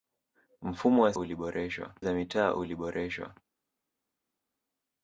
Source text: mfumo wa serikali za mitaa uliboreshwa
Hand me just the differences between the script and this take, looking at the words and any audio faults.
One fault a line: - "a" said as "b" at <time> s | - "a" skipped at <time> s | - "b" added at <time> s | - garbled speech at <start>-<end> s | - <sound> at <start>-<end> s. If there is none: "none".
- "serikali" said as "uliboreshwa" at 1.1 s